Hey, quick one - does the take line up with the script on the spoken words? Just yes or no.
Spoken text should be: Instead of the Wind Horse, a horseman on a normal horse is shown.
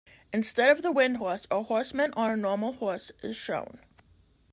yes